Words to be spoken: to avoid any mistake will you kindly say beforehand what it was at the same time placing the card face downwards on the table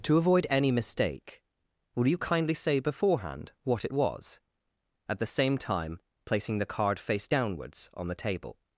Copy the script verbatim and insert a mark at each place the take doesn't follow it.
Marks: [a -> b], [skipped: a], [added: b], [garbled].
to avoid any mistake will you kindly say beforehand what it was at the same time placing the card face downwards on the table